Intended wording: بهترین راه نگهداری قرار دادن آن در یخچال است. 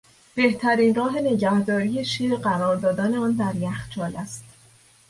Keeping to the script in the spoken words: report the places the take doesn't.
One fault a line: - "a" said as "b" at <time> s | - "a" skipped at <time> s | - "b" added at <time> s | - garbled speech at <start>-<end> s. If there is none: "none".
- "شیر" added at 2.1 s